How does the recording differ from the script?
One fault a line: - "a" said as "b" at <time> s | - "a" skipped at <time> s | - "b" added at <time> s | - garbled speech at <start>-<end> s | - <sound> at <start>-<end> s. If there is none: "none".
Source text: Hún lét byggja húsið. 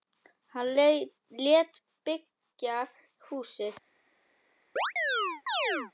- "Hún" said as "Hann" at 0.5 s
- chirp at 4.8-5.9 s